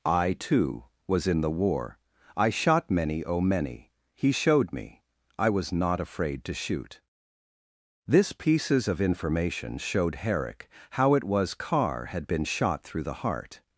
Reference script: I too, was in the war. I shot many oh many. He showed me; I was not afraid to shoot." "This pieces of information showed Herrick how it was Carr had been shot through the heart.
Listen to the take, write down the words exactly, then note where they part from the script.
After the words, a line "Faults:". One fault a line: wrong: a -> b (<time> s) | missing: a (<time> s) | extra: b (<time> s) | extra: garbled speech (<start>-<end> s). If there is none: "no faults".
I too, was in the war. I shot many oh many. He showed me; I was not afraid to shoot." "This pieces of information showed Herrick how it was Carr had been shot through the heart.
Faults:
no faults